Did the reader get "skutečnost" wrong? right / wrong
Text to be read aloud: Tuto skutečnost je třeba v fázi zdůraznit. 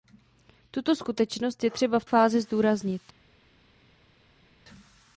right